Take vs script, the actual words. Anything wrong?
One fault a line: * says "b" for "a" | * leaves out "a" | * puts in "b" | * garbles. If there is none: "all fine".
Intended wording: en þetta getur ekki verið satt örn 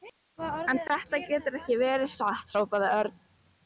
* puts in "hrópaði"